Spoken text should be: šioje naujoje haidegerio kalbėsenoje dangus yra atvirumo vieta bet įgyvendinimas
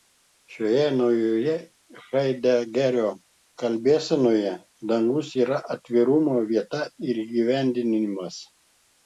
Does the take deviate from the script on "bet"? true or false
true